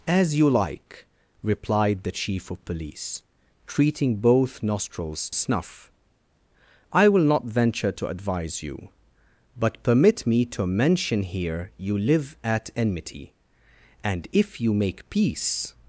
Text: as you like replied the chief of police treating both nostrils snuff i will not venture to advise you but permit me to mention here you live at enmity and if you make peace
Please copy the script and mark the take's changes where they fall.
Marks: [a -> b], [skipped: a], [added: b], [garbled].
as you like replied the chief of police treating both nostrils snuff i will not venture to advise you but permit me to mention here you live at enmity and if you make peace